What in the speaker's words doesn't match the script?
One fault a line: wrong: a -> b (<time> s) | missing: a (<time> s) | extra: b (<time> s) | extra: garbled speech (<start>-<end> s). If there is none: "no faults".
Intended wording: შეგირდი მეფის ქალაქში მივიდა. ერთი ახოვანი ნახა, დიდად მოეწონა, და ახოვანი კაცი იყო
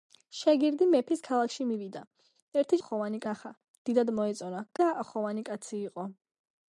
no faults